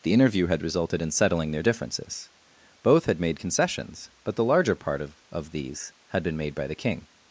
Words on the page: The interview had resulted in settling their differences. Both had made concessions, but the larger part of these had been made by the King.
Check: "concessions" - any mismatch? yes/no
no